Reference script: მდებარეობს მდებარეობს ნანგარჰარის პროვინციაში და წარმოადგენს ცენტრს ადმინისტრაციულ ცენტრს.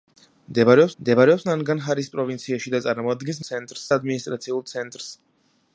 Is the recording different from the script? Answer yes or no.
no